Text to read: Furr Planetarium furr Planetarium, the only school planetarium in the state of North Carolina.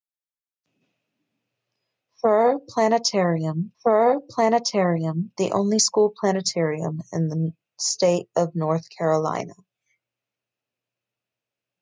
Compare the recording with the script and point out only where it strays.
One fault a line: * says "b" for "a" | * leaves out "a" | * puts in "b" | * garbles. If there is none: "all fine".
all fine